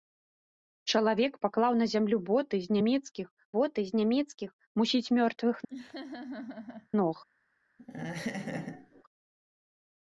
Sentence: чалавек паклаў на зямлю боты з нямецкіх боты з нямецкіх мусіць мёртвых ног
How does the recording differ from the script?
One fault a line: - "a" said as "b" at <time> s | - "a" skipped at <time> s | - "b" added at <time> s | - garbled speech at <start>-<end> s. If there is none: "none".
none